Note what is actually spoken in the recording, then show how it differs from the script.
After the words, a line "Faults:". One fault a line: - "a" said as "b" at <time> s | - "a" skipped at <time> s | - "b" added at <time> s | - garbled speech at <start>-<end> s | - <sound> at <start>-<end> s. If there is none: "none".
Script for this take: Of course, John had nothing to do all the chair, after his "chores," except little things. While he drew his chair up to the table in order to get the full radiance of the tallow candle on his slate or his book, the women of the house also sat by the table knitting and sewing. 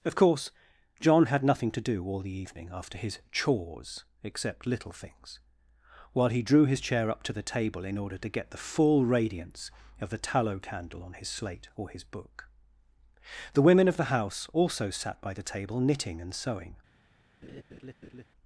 Of course, John had nothing to do all the evening, after his "chores," except little things. While he drew his chair up to the table in order to get the full radiance of the tallow candle on his slate or his book, the women of the house also sat by the table knitting and sewing.
Faults:
- "chair" said as "evening" at 2.4 s
- laugh at 17.4-18.2 s